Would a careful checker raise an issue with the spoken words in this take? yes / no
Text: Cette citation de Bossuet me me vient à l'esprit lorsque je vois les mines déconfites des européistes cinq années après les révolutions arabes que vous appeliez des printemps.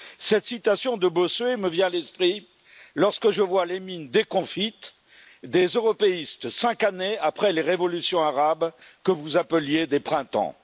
yes